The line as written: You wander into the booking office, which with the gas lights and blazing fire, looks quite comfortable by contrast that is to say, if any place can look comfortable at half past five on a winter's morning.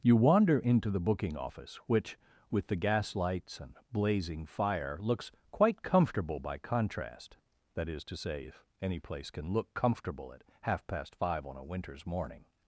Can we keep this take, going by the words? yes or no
yes